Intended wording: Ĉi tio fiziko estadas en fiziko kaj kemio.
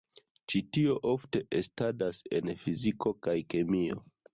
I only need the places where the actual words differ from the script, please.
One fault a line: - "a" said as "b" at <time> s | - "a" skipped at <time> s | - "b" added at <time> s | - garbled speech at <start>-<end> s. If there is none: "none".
- "fiziko" said as "ofte" at 1.1 s